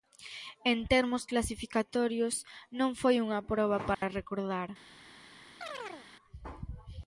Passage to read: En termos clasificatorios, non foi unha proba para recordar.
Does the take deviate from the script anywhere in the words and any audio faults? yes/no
yes